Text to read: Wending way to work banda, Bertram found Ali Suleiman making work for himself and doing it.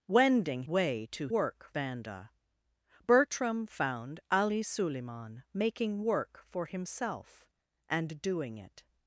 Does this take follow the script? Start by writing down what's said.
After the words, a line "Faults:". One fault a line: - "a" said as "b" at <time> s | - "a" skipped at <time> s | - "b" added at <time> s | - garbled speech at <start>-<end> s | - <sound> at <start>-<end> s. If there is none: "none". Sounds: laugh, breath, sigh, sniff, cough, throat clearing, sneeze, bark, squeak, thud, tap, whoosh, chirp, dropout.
Wending way to work banda, Bertram found Ali Suleiman making work for himself and doing it.
Faults:
none